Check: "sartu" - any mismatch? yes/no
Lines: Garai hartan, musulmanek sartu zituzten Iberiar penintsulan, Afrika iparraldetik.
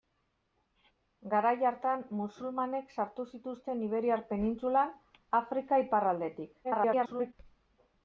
no